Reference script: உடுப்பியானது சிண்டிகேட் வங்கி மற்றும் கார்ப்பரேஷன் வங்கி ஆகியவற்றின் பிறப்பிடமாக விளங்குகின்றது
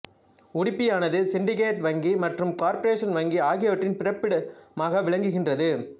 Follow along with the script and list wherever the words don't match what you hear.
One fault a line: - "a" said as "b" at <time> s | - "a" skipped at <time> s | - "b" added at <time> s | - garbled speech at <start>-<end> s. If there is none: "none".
none